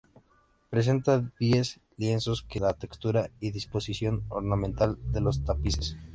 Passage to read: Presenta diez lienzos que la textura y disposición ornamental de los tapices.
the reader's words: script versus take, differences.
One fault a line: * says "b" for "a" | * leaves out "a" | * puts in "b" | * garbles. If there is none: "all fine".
all fine